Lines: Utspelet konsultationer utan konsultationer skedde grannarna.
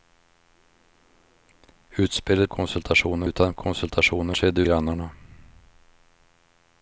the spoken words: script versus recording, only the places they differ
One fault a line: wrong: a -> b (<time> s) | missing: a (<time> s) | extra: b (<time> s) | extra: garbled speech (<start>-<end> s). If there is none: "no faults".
no faults